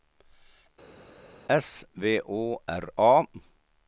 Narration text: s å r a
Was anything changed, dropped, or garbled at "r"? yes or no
no